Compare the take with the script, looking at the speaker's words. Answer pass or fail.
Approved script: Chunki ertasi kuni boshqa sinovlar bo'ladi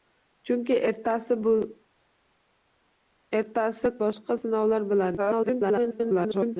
fail